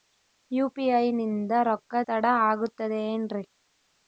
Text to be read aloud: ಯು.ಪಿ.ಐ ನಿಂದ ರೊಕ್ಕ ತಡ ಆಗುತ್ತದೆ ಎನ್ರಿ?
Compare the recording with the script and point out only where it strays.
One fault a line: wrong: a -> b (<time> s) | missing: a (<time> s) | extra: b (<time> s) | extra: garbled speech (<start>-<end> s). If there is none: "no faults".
no faults